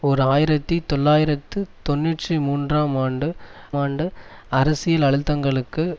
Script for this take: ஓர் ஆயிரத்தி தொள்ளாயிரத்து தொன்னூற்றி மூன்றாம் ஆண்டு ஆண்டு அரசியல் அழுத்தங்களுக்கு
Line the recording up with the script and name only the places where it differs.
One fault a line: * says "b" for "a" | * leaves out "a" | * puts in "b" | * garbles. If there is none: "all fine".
all fine